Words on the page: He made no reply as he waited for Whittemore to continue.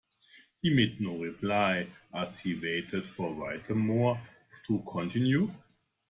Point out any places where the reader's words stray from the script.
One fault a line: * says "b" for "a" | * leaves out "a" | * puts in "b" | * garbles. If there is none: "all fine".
all fine